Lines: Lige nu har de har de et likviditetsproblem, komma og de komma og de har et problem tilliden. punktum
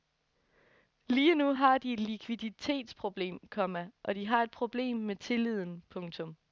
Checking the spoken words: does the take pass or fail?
fail